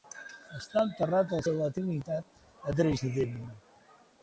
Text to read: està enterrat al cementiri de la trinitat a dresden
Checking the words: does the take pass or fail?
fail